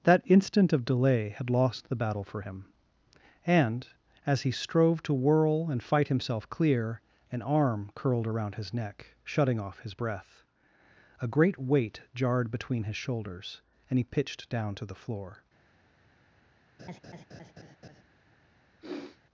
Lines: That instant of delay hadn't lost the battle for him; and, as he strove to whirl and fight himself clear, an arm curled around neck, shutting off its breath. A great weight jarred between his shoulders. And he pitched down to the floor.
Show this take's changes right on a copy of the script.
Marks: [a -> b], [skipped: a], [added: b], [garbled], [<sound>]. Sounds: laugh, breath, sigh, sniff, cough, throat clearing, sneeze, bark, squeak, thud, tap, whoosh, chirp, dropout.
That instant of delay [hadn't -> had] lost the battle for him; and, as he strove to whirl and fight himself clear, an arm curled around [added: his] neck, shutting off [its -> his] breath. A great weight jarred between his shoulders. And he pitched down to the floor. [laugh] [sniff]